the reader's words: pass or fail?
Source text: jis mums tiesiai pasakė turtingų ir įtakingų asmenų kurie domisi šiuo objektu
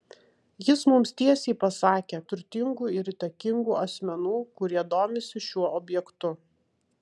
pass